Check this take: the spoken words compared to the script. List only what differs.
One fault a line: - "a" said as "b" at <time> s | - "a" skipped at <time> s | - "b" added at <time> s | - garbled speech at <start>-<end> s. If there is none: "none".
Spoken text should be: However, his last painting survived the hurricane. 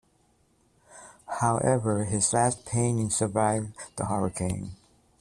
none